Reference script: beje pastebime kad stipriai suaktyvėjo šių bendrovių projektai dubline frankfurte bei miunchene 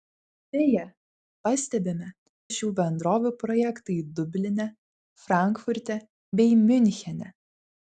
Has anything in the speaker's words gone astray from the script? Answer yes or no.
yes